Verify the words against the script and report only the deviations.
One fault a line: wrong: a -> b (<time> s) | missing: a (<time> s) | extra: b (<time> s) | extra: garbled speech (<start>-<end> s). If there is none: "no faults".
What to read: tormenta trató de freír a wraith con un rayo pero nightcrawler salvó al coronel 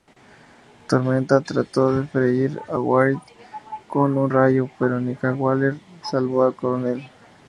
no faults